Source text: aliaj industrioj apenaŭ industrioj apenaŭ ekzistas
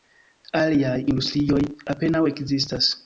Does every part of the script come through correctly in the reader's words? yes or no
no